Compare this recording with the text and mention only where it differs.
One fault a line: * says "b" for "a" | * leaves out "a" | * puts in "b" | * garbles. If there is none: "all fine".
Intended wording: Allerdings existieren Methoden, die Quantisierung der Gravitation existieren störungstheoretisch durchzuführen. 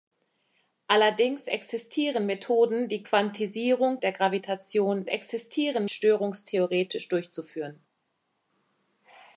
all fine